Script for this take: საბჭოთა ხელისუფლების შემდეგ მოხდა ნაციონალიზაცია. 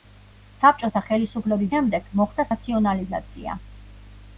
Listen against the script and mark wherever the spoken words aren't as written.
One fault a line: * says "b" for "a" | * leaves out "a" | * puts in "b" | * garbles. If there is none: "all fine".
all fine